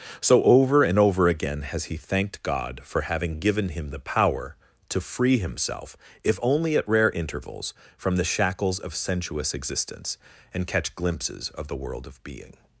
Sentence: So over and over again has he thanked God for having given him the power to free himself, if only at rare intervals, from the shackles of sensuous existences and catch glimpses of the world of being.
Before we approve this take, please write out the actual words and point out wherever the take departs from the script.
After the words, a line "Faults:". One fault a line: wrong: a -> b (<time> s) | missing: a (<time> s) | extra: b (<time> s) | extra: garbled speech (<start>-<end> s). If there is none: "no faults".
So over and over again has he thanked God for having given him the power to free himself, if only at rare intervals, from the shackles of sensuous existence and catch glimpses of the world of being.
Faults:
wrong: existences -> existence (9.5 s)